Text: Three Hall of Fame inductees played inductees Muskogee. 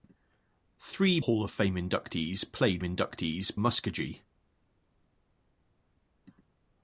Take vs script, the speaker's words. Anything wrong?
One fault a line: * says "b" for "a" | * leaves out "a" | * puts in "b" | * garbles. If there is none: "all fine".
all fine